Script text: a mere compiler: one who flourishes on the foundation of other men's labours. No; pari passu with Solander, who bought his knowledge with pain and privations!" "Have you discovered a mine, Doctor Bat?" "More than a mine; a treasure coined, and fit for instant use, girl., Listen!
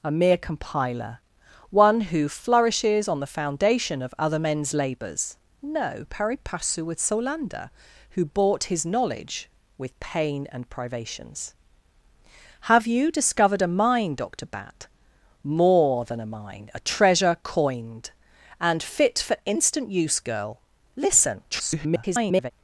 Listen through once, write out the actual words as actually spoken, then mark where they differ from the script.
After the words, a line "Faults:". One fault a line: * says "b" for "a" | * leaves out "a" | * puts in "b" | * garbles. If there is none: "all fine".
a mere compiler: one who flourishes on the foundation of other men's labours. No; pari passu with Solander, who bought his knowledge with pain and privations!" "Have you discovered a mine, Doctor Bat?" "More than a mine; a treasure coined, and fit for instant use, girl., Listen! [garbled]
Faults:
* garbles